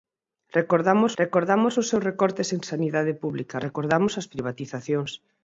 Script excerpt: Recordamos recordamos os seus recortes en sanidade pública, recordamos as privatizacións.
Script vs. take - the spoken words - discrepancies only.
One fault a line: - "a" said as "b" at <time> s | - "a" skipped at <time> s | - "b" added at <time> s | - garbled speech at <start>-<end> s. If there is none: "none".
none